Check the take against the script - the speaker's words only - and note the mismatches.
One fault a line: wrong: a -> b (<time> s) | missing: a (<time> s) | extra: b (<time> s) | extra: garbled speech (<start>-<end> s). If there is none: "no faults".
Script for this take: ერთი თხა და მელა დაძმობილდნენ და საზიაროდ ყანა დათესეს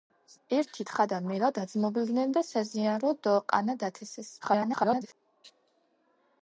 extra: garbled speech (4.4-5.1 s)